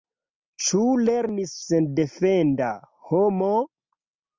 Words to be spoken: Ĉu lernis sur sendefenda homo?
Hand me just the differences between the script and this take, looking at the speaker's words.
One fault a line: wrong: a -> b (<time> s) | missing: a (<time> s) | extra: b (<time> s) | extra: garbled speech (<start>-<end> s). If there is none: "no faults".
missing: sur (1.5 s)